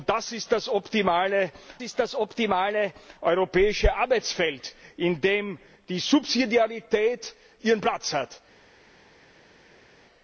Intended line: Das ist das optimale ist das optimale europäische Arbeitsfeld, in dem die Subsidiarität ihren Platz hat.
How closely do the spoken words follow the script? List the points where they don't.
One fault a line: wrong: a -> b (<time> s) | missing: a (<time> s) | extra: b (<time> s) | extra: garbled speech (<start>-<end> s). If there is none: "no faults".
no faults